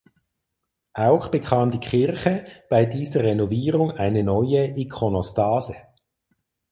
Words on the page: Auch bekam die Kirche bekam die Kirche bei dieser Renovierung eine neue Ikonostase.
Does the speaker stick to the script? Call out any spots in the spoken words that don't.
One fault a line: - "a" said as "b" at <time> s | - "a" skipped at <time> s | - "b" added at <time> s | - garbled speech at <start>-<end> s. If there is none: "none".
- "bekam die Kirche" skipped at 2.4 s